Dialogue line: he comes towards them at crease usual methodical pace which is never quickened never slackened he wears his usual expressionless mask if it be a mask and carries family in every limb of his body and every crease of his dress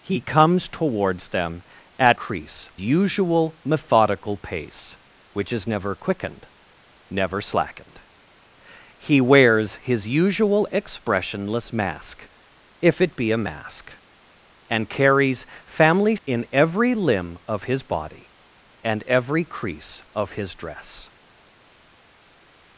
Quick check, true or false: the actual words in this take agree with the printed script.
true